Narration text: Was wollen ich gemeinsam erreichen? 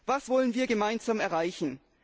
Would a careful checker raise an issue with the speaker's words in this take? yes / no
yes